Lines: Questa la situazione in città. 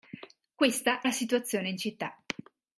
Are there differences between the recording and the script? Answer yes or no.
no